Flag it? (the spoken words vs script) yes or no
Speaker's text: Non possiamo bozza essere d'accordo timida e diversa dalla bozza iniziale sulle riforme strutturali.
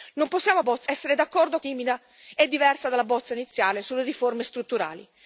no